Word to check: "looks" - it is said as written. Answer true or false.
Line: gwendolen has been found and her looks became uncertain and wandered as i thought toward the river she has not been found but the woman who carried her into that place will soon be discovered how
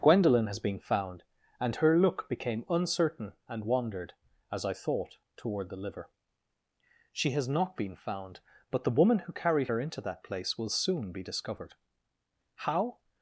false